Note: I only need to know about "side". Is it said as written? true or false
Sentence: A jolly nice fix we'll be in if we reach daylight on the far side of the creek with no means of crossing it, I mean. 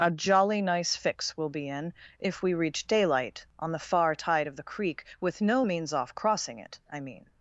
false